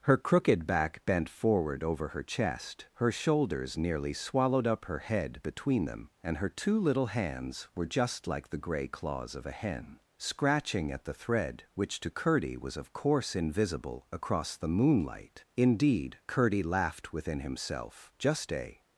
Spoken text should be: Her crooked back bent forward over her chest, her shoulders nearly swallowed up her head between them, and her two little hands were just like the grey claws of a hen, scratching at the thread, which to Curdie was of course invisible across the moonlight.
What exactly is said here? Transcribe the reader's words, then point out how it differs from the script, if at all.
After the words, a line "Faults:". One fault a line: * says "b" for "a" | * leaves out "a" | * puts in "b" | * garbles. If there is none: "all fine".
Her crooked back bent forward over her chest, her shoulders nearly swallowed up her head between them, and her two little hands were just like the grey claws of a hen, scratching at the thread, which to Curdie was of course invisible across the moonlight. Indeed Curdie laughed within himself, just a
Faults:
* puts in "Indeed Curdie laughed within himself just a"